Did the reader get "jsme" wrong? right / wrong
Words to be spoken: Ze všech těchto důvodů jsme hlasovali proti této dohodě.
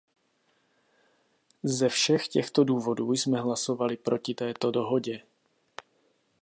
right